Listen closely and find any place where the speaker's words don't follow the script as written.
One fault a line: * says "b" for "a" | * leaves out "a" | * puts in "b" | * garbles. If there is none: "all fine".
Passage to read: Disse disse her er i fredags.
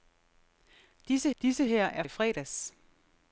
all fine